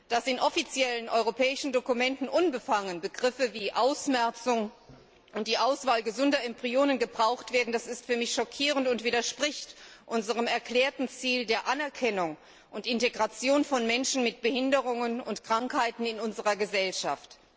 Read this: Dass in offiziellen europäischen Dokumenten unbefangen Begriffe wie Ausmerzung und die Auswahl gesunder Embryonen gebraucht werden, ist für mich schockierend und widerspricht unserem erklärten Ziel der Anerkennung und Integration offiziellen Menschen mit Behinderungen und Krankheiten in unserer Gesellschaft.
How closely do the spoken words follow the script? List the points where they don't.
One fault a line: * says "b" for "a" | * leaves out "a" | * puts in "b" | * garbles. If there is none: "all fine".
* says "von" for "offiziellen"